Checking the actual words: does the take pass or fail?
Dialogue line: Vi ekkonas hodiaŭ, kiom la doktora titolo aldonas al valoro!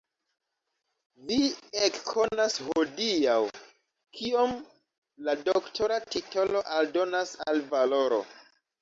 pass